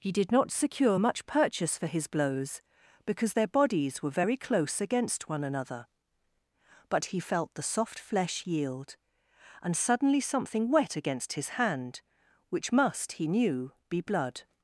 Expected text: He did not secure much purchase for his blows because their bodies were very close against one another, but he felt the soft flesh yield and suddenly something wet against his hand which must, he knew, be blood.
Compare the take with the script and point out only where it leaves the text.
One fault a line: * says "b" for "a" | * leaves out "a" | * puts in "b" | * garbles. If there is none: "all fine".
all fine